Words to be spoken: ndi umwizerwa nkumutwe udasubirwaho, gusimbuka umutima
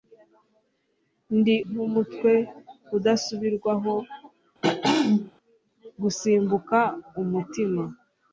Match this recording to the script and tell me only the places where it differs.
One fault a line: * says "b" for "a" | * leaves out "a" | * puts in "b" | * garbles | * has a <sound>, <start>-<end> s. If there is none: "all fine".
* leaves out "umwizerwa"
* has a throat clearing, 4.6-5.3 s